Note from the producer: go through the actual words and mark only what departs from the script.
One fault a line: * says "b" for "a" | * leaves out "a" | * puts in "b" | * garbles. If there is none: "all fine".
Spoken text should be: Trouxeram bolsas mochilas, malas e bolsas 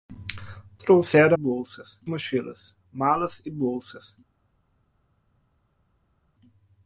all fine